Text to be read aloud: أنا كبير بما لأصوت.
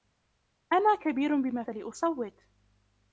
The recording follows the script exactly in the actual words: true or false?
true